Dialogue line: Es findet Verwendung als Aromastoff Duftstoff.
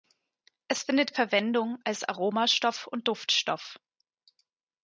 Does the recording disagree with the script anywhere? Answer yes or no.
yes